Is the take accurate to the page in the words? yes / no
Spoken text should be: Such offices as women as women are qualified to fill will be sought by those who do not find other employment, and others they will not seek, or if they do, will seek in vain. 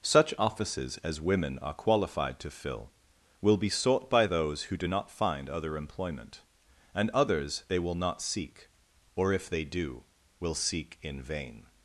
no